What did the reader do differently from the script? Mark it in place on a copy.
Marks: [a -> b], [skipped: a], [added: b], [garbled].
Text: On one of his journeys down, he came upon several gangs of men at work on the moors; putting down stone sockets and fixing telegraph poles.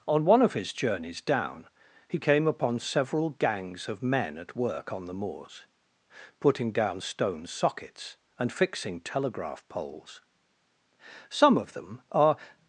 On one of his journeys down, he came upon several gangs of men at work on the moors; putting down stone sockets and fixing telegraph poles. [added: Some of them are]